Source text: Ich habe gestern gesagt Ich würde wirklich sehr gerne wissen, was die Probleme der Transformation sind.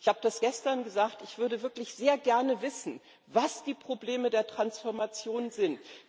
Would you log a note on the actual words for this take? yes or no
yes